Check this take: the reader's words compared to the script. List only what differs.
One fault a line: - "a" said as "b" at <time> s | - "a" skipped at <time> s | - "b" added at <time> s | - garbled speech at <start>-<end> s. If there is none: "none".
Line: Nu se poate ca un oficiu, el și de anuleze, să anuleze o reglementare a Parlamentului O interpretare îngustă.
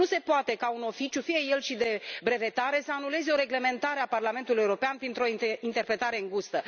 - "fie" added at 1.2 s
- "anuleze" said as "brevetare" at 2.2 s
- "European printr" added at 4.6 s